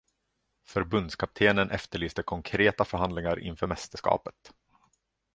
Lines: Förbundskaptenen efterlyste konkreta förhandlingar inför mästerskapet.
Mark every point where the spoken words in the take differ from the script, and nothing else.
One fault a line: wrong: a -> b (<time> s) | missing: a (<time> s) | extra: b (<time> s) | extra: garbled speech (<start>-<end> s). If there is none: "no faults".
no faults